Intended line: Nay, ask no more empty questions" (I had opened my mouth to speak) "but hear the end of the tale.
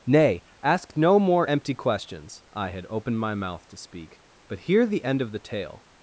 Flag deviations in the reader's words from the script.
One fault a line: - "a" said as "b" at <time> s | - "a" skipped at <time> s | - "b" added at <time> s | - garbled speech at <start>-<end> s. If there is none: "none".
none